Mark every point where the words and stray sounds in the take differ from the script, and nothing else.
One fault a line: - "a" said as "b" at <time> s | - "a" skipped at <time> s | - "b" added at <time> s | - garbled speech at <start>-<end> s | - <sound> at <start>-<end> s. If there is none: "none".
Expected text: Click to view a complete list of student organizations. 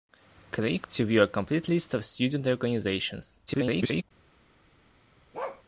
- garbled speech at 3.5-4.0 s
- bark at 5.3-5.6 s